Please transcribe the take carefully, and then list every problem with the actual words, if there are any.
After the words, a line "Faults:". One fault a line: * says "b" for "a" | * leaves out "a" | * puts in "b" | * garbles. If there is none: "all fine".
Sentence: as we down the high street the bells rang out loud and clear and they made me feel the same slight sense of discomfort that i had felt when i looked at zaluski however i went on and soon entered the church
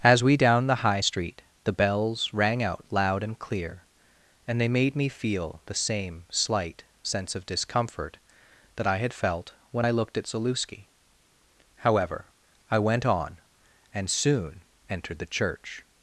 as we down the high street the bells rang out loud and clear and they made me feel the same slight sense of discomfort that i had felt when i looked at zaluski however i went on and soon entered the church
Faults:
all fine